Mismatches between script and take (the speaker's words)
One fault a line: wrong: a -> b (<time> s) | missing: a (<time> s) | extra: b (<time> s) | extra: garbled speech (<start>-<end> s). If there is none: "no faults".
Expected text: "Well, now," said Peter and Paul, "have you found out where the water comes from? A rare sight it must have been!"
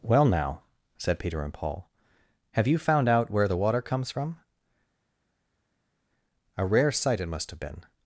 no faults